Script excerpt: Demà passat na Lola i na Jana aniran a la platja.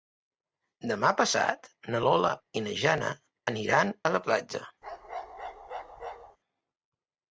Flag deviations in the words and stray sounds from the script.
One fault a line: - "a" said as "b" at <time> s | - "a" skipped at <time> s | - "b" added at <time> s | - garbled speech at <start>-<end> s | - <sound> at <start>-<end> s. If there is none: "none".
- bark at 4.8-6.4 s